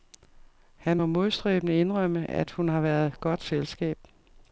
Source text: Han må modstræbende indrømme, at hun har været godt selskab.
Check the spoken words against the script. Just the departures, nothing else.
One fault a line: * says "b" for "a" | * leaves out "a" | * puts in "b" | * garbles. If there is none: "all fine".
all fine